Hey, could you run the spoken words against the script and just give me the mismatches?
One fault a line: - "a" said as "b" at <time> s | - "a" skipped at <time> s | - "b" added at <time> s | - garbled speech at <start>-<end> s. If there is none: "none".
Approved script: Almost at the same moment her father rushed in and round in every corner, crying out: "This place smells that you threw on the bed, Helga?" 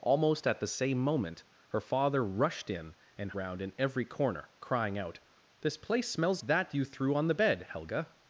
none